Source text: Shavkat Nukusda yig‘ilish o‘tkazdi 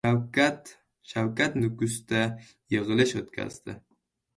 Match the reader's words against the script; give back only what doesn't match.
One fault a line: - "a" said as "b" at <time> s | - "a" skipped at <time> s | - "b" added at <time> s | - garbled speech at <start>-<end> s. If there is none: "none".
none